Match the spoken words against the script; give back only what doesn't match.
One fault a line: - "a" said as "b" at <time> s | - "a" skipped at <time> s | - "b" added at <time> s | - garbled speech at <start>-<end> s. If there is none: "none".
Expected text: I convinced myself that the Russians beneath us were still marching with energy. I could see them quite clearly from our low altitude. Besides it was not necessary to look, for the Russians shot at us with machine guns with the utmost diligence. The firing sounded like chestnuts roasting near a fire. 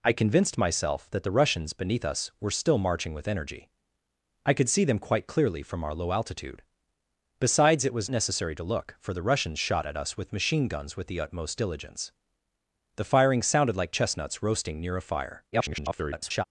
- "not" skipped at 8.1 s
- garbled speech at 15.5-16.4 s